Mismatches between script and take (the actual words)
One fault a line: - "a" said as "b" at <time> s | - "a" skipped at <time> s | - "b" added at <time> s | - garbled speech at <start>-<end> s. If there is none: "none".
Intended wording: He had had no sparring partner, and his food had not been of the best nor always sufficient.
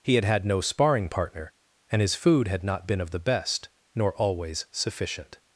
none